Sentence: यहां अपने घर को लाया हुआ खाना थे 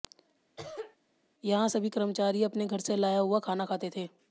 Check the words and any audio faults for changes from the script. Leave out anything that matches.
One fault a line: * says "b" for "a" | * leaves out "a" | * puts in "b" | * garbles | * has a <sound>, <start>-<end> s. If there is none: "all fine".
* has a cough, 0.6-1.0 s
* puts in "सभी कर्मचारी"
* says "से" for "को"
* puts in "खाते"